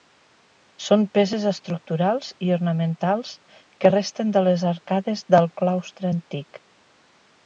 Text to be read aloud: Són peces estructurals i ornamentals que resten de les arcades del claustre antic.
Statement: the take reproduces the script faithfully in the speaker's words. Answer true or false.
true